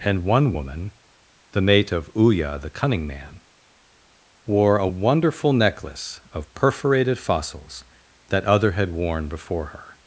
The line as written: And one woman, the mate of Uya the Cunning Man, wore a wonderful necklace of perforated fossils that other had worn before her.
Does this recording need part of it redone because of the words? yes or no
no